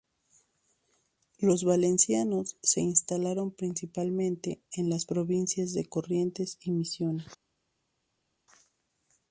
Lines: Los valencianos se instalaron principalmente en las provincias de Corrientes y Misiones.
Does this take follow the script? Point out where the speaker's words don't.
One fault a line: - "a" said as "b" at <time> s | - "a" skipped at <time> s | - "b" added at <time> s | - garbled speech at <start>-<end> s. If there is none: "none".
none